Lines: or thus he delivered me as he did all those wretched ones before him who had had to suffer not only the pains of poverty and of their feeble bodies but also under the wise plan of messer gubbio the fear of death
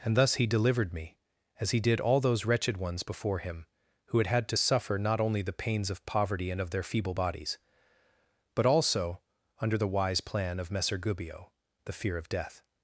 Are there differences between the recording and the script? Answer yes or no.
yes